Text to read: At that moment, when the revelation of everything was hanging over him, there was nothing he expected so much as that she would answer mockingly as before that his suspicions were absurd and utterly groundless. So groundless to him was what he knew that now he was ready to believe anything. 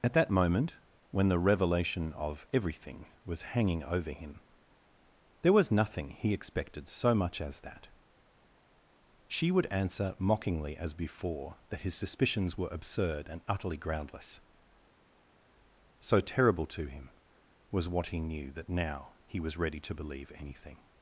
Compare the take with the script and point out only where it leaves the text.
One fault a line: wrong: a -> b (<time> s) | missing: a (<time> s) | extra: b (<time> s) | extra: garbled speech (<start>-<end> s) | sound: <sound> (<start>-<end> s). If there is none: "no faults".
wrong: groundless -> terrible (16.2 s)